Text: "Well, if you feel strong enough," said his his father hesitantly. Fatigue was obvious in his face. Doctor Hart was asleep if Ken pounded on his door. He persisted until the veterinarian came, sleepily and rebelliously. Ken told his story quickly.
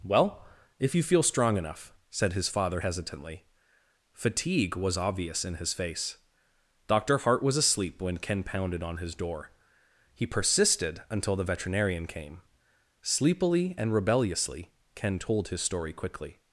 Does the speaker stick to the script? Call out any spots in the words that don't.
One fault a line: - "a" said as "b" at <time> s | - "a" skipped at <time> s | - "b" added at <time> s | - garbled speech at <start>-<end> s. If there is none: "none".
- "his" skipped at 2.5 s
- "if" said as "when" at 8.0 s